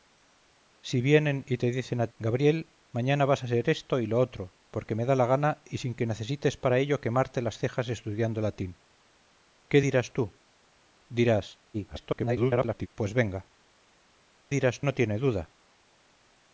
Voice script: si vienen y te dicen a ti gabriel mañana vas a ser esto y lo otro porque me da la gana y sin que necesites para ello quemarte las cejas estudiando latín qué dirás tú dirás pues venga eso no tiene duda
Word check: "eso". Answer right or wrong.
wrong